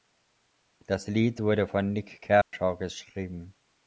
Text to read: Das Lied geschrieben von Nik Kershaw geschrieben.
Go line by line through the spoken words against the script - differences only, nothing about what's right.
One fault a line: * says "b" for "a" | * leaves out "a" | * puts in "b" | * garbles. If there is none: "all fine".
* says "wurde" for "geschrieben"